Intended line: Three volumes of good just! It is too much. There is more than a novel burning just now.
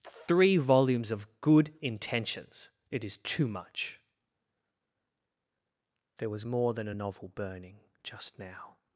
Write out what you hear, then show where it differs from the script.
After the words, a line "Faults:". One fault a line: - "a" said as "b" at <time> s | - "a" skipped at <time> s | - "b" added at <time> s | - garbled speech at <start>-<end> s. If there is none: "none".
Three volumes of good intentions! It is too much. There was more than a novel burning just now.
Faults:
- "just" said as "intentions" at 1.8 s
- "is" said as "was" at 6.3 s